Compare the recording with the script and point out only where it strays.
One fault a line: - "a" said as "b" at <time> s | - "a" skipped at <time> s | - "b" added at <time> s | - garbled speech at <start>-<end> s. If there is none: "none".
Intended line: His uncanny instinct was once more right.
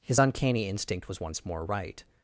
none